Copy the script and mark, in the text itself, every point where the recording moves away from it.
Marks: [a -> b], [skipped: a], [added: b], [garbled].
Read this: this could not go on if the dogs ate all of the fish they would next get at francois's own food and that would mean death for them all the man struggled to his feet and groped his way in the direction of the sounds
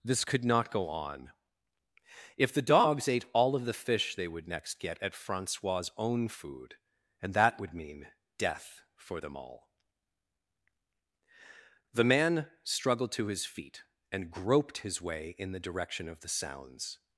this could not go on if the dogs ate all of the fish they would next get at francois's own food and that would mean death for them all the man struggled to his feet and groped his way in the direction of the sounds